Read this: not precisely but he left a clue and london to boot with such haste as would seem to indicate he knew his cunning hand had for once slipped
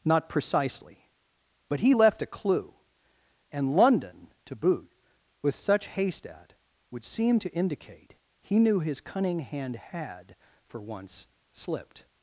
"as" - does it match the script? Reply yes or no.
no